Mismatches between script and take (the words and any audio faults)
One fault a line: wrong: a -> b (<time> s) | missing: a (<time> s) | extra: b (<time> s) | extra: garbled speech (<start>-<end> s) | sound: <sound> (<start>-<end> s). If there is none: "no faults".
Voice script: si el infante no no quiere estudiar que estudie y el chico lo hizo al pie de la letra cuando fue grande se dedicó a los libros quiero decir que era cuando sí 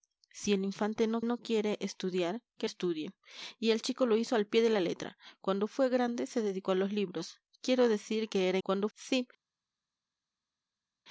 no faults